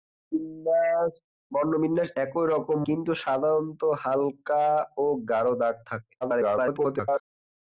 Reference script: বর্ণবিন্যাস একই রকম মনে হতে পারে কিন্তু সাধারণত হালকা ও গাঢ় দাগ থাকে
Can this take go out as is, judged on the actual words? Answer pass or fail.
fail